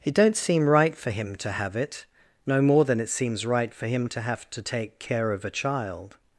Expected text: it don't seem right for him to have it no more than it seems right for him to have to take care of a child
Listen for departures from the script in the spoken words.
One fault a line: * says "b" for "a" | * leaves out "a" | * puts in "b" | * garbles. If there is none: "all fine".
all fine